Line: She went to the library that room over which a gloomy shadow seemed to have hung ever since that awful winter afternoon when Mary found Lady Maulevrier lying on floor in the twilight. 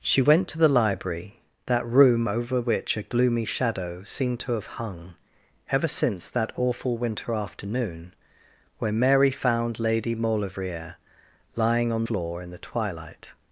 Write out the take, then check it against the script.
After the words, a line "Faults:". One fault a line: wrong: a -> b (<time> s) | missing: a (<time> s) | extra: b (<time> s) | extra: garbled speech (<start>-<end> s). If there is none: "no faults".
She went to the library that room over which a gloomy shadow seemed to have hung ever since that awful winter afternoon when Mary found Lady Maulevrier lying on floor in the twilight.
Faults:
no faults